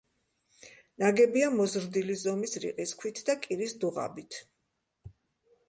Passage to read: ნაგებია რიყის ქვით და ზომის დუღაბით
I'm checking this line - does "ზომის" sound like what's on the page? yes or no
no